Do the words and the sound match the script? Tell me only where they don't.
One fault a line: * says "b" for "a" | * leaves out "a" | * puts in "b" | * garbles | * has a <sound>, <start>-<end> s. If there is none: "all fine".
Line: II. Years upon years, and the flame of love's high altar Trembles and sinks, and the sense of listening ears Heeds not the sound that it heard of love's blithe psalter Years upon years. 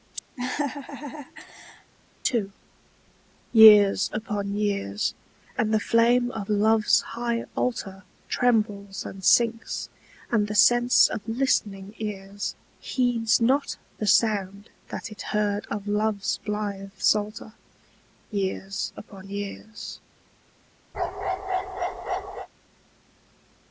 * has a laugh, 0.4-1.9 s
* has a bark, 20.9-22.5 s